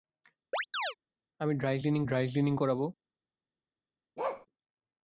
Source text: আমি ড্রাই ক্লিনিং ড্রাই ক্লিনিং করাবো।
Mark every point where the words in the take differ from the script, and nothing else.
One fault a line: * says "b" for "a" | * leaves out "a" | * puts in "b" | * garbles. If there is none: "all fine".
all fine